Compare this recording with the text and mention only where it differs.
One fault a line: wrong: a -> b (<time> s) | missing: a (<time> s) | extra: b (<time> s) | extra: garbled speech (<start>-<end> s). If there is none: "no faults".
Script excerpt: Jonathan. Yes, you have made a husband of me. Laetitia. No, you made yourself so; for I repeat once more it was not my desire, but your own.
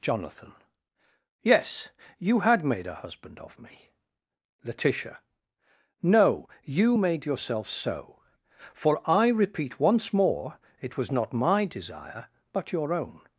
wrong: have -> had (2.4 s)